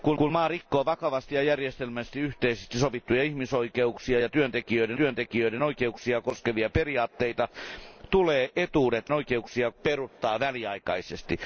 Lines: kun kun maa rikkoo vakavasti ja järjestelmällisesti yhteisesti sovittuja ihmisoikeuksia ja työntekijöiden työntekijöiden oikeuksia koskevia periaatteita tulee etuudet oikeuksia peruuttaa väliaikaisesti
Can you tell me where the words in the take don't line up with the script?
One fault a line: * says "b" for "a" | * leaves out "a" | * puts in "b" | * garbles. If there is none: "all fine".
all fine